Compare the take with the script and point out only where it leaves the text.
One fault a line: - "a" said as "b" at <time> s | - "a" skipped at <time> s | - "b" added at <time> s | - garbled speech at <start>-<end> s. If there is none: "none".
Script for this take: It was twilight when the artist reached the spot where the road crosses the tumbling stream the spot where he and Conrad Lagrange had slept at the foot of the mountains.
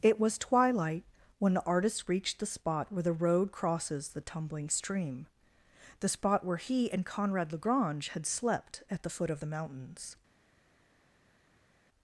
none